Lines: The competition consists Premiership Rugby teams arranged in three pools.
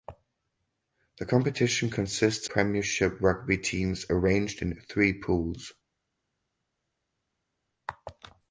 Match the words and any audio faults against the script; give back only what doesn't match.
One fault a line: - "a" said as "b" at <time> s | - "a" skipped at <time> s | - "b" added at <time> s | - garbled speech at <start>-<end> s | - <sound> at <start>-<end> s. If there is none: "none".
none